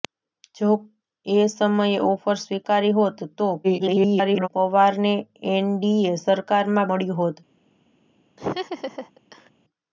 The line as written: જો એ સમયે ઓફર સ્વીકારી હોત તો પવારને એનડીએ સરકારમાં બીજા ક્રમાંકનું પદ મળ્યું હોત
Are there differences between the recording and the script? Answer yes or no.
yes